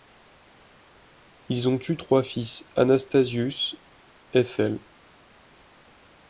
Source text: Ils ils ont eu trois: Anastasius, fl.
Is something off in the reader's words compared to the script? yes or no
yes